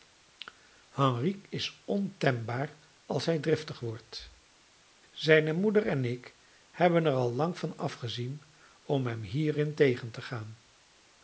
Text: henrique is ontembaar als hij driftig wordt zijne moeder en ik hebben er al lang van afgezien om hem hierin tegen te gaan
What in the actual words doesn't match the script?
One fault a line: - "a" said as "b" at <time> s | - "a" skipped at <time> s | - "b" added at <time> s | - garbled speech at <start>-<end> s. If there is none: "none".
none